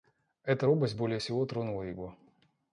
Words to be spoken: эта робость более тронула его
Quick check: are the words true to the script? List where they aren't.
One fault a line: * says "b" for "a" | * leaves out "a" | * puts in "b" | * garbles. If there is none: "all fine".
* puts in "всего"